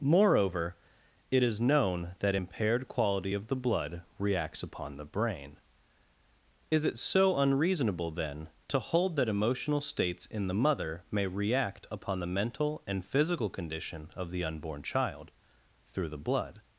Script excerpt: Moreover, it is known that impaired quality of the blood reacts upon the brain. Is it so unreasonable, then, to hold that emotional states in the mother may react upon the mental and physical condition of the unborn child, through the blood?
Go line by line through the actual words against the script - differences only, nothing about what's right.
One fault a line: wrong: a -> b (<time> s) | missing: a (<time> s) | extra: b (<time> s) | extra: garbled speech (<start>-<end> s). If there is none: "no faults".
no faults